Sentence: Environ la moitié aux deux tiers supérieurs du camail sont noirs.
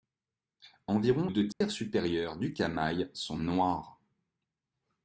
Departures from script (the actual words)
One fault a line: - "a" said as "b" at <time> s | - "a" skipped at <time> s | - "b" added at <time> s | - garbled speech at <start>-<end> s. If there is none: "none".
- "la moitié aux" skipped at 1.3 s